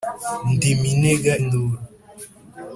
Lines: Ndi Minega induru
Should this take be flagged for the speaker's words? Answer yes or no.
no